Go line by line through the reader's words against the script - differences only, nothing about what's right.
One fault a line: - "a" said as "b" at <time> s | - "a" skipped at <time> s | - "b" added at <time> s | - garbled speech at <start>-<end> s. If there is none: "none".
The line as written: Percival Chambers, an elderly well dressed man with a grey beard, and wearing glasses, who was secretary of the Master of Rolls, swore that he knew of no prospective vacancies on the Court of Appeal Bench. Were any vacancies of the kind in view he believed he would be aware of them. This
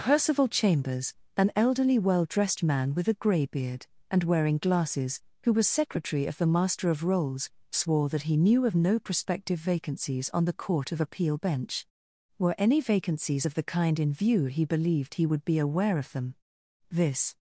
none